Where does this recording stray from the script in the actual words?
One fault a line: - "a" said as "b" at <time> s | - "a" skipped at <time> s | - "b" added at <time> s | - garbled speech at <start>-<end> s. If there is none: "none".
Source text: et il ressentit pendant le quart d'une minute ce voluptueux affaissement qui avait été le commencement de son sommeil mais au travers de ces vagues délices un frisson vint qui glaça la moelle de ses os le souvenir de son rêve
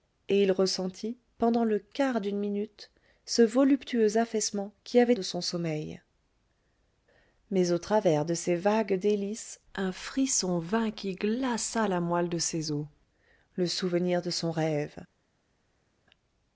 - "été le commencement" skipped at 5.1 s